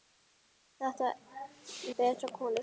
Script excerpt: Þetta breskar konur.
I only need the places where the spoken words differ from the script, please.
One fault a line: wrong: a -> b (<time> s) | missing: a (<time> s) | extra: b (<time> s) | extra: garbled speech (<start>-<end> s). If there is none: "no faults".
no faults